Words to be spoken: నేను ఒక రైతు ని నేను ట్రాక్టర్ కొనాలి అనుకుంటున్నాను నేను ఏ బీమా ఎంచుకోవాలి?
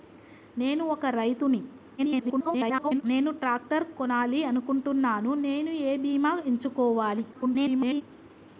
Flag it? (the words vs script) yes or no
yes